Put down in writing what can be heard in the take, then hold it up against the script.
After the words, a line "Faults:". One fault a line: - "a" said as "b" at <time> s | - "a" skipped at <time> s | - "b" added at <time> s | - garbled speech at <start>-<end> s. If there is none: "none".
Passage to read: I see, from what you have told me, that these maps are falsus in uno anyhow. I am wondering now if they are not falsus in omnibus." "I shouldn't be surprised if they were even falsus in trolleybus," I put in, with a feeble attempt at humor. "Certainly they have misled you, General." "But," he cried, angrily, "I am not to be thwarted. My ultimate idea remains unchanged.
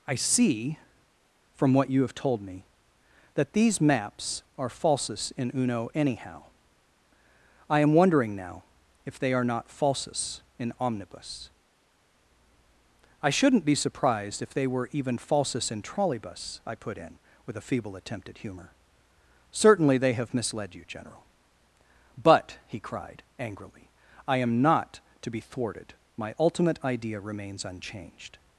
I see, from what you have told me, that these maps are falsus in uno anyhow. I am wondering now if they are not falsus in omnibus." "I shouldn't be surprised if they were even falsus in trolleybus," I put in, with a feeble attempt at humor. "Certainly they have misled you, General." "But," he cried, angrily, "I am not to be thwarted. My ultimate idea remains unchanged.
Faults:
none